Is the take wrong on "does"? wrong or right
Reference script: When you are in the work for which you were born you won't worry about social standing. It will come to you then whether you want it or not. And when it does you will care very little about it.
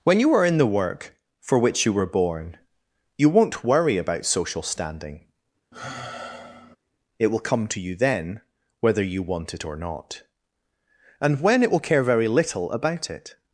wrong